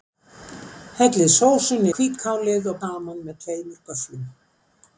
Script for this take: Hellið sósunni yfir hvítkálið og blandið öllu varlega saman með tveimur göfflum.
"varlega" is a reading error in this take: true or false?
true